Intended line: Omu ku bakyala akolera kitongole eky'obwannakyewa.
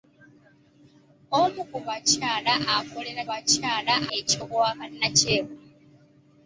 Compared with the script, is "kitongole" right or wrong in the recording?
wrong